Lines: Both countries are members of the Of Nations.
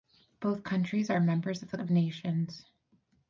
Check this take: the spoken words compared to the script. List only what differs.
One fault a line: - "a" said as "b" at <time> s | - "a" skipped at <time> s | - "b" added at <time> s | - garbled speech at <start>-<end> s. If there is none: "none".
none